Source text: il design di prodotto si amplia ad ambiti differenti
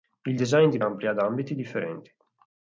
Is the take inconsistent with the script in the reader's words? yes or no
yes